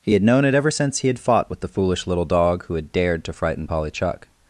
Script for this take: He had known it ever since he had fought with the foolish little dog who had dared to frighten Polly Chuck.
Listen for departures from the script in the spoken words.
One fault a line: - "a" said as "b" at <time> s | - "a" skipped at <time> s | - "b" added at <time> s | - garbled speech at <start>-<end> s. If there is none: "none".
none